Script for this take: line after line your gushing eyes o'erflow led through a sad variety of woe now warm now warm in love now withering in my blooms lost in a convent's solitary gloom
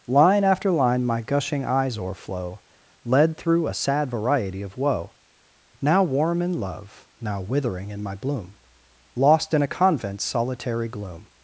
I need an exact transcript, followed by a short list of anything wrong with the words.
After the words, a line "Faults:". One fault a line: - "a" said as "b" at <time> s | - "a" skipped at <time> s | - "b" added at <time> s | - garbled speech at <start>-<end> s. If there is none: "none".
line after line my gushing eyes o'erflow led through a sad variety of woe now warm in love now withering in my bloom lost in a convent's solitary gloom
Faults:
- "your" said as "my" at 1.1 s
- "now warm" skipped at 6.4 s
- "blooms" said as "bloom" at 8.1 s